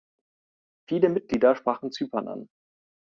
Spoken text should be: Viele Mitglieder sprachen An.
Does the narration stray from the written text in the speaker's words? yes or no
yes